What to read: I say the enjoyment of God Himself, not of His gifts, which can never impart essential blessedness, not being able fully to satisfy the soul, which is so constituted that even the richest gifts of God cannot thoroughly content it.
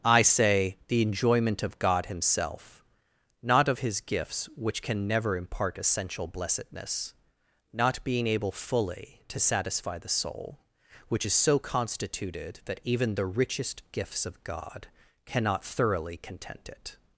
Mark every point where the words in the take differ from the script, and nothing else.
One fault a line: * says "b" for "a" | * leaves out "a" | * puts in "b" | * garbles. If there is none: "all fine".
all fine